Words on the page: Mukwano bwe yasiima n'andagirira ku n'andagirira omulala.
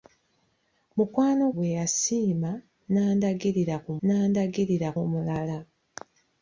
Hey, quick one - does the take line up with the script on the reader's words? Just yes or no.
yes